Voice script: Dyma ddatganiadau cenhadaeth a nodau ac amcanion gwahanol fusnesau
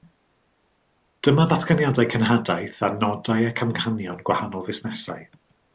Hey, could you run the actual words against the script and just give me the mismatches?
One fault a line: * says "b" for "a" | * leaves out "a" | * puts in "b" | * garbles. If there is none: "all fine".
all fine